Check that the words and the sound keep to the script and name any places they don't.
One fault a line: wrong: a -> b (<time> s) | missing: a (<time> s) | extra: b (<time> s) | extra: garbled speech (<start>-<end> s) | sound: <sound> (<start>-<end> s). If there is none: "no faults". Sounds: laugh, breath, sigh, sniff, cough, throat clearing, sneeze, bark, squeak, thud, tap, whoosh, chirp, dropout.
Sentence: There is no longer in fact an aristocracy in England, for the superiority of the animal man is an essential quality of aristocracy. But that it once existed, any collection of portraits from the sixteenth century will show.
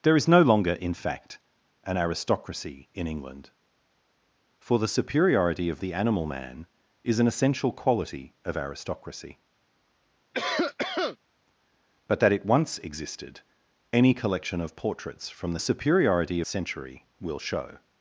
sound: cough (10.3-11.2 s)
wrong: sixteenth -> superiority (15.6 s)